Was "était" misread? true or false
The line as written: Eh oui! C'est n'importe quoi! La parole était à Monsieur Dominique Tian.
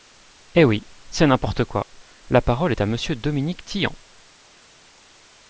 true